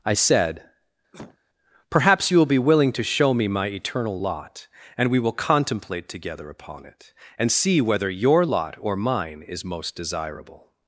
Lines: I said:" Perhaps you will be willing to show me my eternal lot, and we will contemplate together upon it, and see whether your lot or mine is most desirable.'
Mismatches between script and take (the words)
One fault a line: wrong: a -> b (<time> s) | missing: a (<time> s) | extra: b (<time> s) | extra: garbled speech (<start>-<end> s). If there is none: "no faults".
no faults